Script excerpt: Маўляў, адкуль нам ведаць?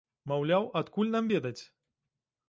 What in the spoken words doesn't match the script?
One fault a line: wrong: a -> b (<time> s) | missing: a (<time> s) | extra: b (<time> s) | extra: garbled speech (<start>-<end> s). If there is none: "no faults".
no faults